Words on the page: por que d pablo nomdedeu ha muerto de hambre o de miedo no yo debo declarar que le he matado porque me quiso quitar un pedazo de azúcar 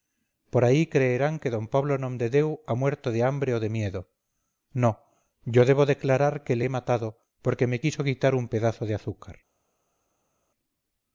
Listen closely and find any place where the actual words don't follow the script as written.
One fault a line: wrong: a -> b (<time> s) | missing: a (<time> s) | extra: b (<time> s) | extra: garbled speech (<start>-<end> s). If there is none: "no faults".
extra: ahí creerán (0.7 s)